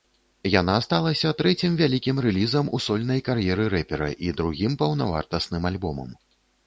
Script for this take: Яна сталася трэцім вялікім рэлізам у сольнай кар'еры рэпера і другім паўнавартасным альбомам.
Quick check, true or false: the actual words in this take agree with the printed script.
true